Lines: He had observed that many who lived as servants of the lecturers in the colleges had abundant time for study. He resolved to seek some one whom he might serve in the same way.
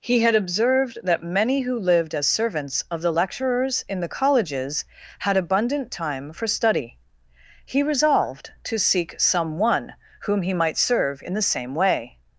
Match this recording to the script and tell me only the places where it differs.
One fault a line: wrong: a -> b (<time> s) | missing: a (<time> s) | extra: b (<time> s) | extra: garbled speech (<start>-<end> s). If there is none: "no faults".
no faults